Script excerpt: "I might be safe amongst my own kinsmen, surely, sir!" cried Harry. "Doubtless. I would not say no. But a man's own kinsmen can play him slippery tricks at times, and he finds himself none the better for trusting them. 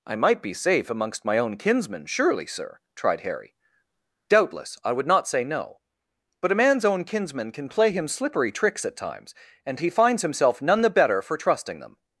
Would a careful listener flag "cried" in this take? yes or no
yes